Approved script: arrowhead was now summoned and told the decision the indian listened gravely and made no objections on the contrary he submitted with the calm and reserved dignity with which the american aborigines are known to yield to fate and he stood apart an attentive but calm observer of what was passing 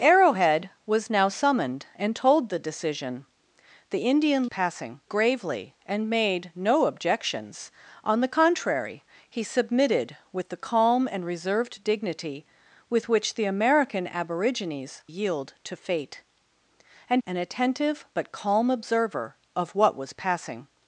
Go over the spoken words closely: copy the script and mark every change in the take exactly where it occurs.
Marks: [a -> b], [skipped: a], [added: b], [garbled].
arrowhead was now summoned and told the decision the indian [listened -> passing] gravely and made no objections on the contrary he submitted with the calm and reserved dignity with which the american aborigines [skipped: are known to] yield to fate and [skipped: he stood apart] an attentive but calm observer of what was passing